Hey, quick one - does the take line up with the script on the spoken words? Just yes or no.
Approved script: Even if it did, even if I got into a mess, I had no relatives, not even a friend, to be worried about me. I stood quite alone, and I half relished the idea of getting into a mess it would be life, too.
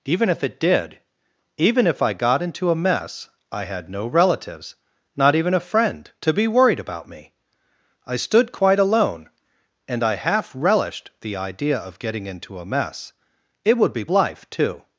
yes